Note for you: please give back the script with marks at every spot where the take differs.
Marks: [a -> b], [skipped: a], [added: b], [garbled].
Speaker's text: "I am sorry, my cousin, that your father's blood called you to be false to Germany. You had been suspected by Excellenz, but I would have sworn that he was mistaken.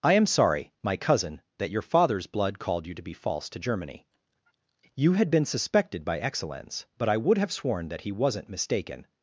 "I am sorry, my cousin, that your father's blood called you to be false to Germany. You had been suspected by Excellenz, but I would have sworn that he [was -> wasn't] mistaken.